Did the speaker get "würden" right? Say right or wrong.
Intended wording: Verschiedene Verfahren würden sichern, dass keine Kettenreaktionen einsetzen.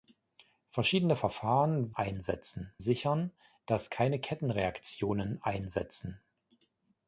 wrong